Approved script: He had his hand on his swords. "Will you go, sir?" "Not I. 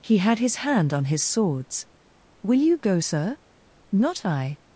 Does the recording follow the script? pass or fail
pass